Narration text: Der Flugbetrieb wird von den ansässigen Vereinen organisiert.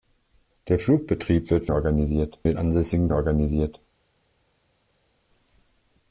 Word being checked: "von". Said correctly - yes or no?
no